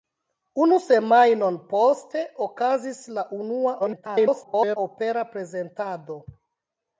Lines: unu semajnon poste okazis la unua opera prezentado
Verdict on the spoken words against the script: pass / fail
fail